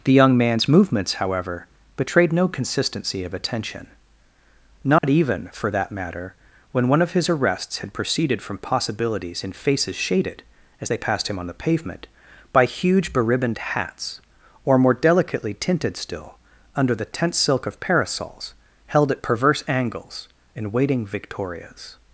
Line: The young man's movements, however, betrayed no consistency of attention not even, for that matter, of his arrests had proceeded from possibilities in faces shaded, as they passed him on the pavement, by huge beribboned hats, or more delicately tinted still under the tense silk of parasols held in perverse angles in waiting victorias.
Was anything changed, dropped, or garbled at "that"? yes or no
no